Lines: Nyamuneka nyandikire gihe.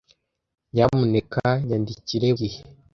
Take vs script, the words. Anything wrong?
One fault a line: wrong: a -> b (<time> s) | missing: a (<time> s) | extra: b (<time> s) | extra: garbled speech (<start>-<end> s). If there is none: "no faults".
no faults